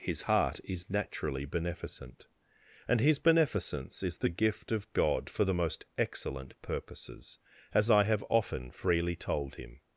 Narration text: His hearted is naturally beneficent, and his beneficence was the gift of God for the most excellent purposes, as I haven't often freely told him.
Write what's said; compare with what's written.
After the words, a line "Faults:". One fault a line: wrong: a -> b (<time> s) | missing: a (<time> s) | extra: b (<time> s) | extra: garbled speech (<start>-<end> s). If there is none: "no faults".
His heart is naturally beneficent, and his beneficence is the gift of God for the most excellent purposes, as I have often freely told him.
Faults:
wrong: hearted -> heart (0.2 s)
wrong: was -> is (4.0 s)
wrong: haven't -> have (8.0 s)